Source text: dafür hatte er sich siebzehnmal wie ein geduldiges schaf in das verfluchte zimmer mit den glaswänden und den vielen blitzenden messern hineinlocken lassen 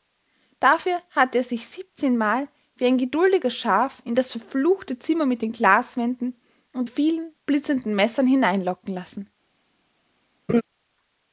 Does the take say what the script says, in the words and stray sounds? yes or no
no